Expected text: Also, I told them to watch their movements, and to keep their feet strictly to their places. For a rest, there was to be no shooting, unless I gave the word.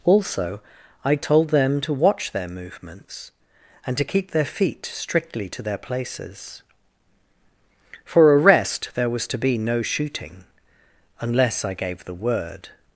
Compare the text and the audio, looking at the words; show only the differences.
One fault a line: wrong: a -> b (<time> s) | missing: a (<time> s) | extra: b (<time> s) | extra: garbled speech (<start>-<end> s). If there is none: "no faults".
no faults